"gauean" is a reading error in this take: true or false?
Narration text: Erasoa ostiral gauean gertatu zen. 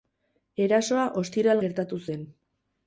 true